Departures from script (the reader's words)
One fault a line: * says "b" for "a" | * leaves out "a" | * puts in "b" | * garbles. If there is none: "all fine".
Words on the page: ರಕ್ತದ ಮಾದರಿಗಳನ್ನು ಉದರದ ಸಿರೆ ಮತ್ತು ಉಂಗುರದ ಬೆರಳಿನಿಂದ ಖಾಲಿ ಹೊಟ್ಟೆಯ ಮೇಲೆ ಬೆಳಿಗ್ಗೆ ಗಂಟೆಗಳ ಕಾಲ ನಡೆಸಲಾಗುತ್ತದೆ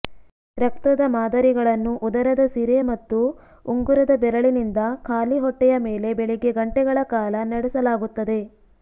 all fine